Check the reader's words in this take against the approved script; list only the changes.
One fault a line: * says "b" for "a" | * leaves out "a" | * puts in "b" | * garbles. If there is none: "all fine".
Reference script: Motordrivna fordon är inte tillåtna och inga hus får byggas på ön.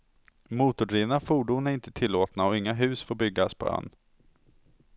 all fine